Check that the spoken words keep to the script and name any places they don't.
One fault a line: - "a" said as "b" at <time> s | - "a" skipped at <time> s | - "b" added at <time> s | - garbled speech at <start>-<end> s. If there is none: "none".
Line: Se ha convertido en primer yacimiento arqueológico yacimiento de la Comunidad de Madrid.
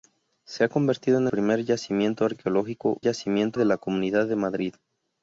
none